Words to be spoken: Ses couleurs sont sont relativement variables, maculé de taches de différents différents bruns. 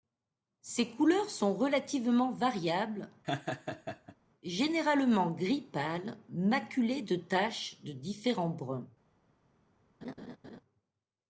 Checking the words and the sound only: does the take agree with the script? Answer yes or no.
no